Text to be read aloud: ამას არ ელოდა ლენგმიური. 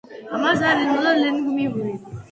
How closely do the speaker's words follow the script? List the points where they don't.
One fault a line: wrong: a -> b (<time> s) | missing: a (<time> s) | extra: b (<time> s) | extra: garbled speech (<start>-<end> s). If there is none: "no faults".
no faults